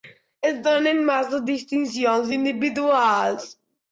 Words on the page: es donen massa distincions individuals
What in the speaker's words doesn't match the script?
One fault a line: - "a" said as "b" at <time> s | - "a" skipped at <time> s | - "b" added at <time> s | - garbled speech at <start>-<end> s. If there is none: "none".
none